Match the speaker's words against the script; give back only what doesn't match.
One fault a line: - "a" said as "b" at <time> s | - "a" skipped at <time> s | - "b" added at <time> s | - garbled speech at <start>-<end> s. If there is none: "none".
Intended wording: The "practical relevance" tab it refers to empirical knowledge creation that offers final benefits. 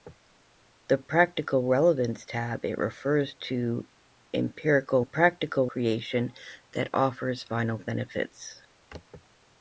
- "knowledge" said as "practical" at 5.0 s